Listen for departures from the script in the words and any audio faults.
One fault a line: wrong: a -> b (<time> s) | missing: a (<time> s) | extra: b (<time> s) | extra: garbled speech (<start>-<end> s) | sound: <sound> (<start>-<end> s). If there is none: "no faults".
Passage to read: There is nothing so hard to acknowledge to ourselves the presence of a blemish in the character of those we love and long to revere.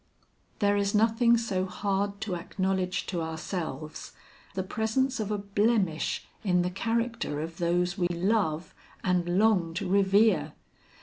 sound: dropout (8.1-8.1 s)